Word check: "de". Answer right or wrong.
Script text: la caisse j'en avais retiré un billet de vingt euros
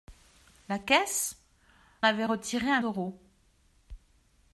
wrong